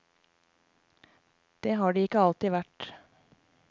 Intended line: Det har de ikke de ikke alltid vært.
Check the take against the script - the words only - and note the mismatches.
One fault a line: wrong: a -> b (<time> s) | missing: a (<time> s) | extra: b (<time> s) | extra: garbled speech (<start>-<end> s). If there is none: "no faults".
missing: de ikke (2.2 s)